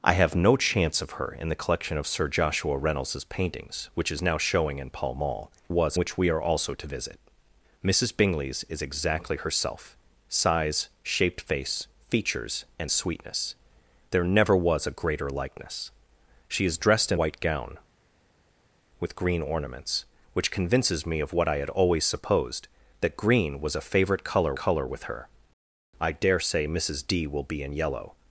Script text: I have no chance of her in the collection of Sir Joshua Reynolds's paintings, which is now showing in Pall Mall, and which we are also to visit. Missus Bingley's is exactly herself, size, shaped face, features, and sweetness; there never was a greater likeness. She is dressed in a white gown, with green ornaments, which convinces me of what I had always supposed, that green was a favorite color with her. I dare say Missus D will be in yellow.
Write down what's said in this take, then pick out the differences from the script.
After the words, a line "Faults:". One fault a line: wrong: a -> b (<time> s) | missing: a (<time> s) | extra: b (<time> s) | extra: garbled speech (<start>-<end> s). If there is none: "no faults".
I have no chance of her in the collection of Sir Joshua Reynolds's paintings, which is now showing in Pall Mall, was which we are also to visit. Missus Bingley's is exactly herself, size, shaped face, features, and sweetness; there never was a greater likeness. She is dressed in white gown, with green ornaments, which convinces me of what I had always supposed, that green was a favorite color color with her. I dare say Missus D will be in yellow.
Faults:
wrong: and -> was (5.7 s)
missing: a (17.2 s)
extra: color (24.5 s)